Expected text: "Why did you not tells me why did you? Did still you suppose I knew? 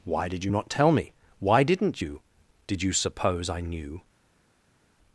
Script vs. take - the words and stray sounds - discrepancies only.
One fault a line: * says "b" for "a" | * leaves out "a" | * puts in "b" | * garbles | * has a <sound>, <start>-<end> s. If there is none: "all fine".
* says "tell" for "tells"
* says "didn't" for "did"
* leaves out "still"